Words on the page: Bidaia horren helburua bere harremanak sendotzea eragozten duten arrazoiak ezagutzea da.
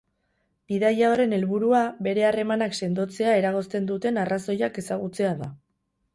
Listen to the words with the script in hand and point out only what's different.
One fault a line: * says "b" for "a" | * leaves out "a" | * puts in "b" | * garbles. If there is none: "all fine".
all fine